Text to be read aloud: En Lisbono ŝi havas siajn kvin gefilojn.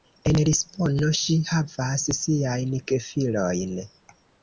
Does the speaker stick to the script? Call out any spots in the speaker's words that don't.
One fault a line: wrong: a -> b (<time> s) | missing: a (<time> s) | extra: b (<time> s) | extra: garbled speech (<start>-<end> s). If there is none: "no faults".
missing: kvin (2.8 s)